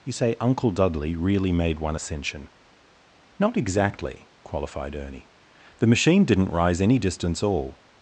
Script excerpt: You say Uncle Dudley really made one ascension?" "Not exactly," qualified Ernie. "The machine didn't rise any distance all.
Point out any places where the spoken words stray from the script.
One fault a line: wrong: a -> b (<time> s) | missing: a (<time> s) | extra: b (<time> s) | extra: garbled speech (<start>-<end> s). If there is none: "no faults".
no faults